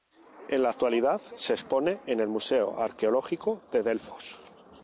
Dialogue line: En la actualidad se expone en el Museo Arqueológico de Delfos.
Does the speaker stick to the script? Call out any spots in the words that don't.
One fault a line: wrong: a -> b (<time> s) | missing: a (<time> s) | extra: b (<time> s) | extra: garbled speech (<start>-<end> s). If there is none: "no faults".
no faults